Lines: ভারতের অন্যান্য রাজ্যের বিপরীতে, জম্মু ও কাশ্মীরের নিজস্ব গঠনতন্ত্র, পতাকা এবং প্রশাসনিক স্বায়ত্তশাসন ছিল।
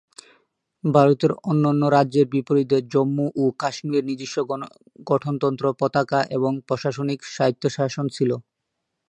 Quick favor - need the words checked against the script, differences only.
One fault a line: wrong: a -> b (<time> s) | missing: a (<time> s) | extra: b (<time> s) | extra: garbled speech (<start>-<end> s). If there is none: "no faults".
no faults